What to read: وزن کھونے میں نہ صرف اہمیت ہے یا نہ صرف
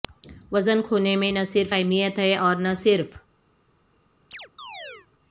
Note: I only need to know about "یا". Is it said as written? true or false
false